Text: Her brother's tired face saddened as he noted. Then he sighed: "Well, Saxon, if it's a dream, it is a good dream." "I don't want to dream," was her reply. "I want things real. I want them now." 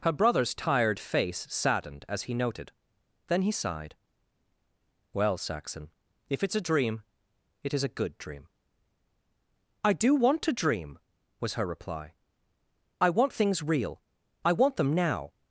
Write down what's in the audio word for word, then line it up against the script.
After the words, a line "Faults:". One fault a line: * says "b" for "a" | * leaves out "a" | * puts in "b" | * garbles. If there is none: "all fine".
Her brother's tired face saddened as he noted. Then he sighed: "Well, Saxon, if it's a dream, it is a good dream." "I do want to dream," was her reply. "I want things real. I want them now."
Faults:
* says "do" for "don't"